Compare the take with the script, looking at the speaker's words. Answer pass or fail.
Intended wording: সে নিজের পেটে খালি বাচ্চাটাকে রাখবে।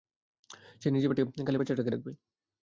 pass